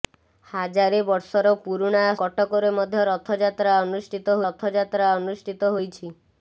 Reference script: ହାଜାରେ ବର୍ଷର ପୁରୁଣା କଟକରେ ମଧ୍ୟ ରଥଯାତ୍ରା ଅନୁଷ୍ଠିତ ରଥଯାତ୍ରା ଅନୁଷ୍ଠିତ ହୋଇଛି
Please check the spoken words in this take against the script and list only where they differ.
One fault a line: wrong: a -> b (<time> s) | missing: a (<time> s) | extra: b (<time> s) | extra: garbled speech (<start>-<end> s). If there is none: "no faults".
no faults